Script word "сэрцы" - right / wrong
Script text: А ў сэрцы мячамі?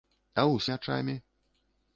wrong